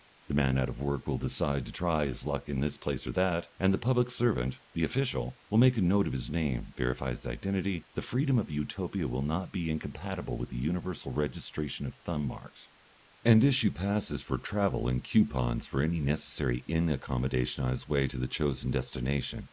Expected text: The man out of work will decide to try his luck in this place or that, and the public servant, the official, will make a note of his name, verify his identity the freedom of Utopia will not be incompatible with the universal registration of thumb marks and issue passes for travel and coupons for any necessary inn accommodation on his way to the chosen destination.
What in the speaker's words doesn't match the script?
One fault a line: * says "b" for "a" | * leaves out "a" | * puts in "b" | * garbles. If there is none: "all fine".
all fine